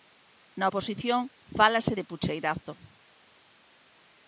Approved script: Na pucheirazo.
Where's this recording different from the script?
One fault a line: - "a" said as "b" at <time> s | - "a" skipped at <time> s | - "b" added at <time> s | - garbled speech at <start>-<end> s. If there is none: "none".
- "oposición fálase de" added at 0.7 s